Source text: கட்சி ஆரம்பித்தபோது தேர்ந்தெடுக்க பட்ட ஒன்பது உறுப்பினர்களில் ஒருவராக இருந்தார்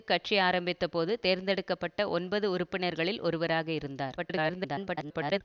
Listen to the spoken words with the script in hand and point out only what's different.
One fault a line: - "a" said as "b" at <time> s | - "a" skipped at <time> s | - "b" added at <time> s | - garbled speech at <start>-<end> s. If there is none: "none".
- garbled speech at 4.2-5.4 s